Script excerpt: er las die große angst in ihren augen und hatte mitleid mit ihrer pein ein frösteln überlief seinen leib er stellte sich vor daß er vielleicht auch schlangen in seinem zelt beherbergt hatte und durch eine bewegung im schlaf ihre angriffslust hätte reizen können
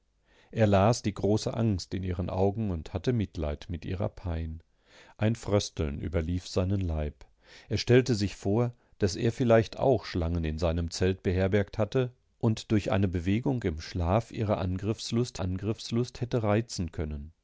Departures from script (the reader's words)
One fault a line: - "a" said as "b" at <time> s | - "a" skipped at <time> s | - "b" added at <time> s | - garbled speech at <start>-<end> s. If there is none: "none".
- "angriffslust" added at 15.4 s